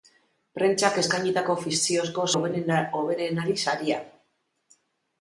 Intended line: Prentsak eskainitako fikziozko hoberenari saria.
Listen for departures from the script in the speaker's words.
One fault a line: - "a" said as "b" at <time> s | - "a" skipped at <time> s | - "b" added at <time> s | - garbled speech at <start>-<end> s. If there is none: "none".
none